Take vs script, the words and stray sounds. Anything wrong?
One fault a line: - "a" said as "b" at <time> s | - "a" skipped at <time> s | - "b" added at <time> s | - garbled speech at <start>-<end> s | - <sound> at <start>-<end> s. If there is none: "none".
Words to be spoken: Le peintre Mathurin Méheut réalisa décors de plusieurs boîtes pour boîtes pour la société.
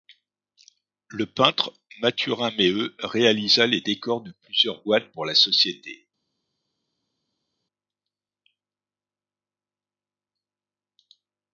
- "les" added at 3.7 s
- "boîtes pour" skipped at 5.2 s